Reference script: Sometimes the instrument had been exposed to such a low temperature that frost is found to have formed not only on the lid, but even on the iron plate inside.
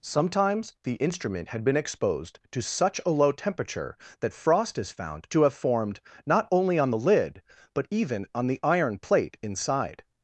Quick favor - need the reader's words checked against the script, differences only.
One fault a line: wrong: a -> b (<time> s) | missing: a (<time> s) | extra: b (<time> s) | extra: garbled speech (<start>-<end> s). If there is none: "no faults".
no faults